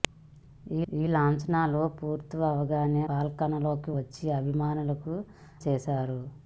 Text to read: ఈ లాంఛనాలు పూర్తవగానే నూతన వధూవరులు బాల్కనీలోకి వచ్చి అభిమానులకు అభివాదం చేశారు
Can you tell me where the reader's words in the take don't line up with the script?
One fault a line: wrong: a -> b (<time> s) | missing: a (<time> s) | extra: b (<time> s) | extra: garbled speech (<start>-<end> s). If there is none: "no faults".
extra: ఈ (0.9 s)
missing: నూతన వధూవరులు (3.0 s)
missing: అభివాదం (5.1 s)